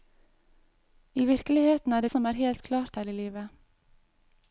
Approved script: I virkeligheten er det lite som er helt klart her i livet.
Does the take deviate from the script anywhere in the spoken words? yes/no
yes